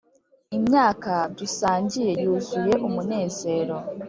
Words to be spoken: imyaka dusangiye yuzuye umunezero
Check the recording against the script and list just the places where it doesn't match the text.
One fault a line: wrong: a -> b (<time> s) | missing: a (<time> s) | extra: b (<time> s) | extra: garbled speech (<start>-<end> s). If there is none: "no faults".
no faults